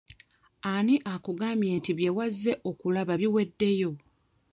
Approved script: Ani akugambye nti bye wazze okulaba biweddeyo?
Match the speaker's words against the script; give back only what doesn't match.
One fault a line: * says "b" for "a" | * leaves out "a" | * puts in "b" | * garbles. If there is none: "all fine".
all fine